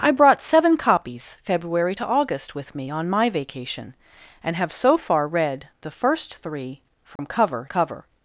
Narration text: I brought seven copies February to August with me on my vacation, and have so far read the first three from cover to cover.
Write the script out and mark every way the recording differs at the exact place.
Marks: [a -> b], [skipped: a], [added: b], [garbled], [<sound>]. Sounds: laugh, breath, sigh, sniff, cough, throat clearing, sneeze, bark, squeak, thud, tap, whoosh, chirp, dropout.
I brought seven copies February to August with me on my vacation, and have so far read the first three from [dropout] cover [skipped: to] cover.